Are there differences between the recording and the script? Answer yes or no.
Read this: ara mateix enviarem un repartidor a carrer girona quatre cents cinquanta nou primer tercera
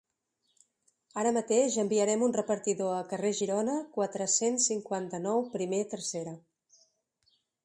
no